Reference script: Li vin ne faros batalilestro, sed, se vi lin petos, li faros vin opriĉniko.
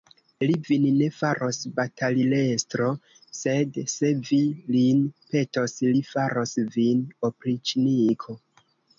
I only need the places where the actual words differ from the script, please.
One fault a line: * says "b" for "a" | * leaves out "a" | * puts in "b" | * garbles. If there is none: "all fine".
all fine